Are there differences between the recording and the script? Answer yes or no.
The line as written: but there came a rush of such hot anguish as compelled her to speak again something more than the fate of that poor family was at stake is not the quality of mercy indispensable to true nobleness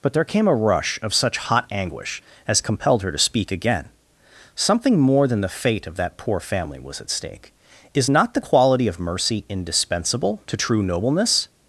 no